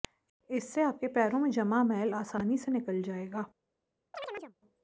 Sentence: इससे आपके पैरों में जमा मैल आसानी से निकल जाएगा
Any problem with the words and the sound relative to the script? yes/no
yes